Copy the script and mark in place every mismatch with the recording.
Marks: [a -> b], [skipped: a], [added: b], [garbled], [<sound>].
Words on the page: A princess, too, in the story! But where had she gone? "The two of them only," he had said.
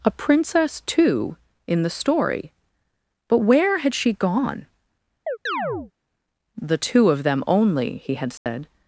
A princess, too, in the story! But where had she gone? [chirp] "The two of them only," he had said. [dropout]